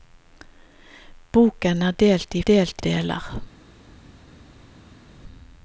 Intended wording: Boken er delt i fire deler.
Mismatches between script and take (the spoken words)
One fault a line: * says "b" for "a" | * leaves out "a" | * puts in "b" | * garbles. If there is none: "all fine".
* says "delt" for "fire"